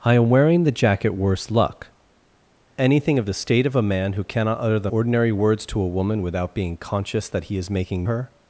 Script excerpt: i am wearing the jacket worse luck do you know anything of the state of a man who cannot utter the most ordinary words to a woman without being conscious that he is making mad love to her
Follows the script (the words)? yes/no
no